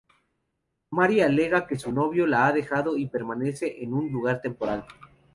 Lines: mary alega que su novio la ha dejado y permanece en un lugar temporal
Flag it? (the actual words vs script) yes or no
no